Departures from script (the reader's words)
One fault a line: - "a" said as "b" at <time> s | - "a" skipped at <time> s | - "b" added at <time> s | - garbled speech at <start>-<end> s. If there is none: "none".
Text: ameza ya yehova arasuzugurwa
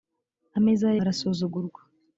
- "yehova" skipped at 1.0 s